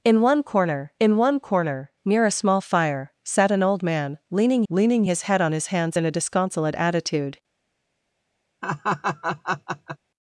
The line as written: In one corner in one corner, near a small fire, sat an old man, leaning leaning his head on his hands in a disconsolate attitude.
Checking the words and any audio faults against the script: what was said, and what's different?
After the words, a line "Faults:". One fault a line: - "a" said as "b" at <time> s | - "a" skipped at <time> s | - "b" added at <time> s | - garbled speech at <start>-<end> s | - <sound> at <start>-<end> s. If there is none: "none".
In one corner in one corner, near a small fire, sat an old man, leaning leaning his head on his hands in a disconsolate attitude.
Faults:
- laugh at 8.6-10.0 s